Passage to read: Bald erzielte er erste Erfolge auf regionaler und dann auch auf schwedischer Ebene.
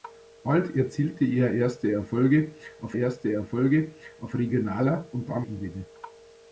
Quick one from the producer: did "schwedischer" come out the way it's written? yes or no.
no